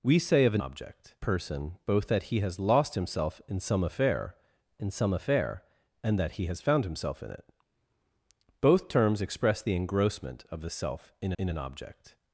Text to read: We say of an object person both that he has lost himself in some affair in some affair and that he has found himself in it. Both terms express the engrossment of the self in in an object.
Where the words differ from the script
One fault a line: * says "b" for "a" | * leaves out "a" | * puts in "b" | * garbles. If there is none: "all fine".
all fine